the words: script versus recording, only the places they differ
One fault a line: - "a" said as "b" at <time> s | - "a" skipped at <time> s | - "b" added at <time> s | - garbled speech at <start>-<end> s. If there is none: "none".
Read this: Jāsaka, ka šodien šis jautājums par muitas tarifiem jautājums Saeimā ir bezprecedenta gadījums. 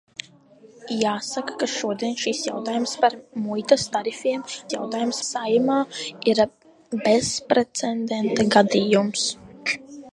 none